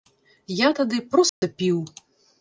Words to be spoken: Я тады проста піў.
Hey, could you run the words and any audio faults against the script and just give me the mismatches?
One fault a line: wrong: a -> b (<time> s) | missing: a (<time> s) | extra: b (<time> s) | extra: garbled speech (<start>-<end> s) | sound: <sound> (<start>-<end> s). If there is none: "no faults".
sound: dropout (1.3-1.4 s)